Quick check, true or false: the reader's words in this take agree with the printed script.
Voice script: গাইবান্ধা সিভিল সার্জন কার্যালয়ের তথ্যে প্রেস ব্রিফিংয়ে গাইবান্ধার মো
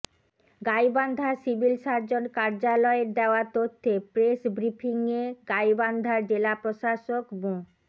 false